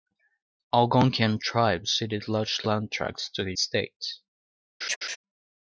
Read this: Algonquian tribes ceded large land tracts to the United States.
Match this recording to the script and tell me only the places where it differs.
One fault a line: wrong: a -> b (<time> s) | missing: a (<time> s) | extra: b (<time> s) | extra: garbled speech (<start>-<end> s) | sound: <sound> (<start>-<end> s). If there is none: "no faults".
missing: United (3.5 s)
sound: laugh (4.8-5.2 s)